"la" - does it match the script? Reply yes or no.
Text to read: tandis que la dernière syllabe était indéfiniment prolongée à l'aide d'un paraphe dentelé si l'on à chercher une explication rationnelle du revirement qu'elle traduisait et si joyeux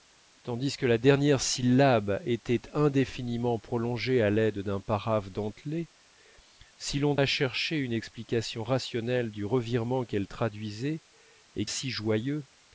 yes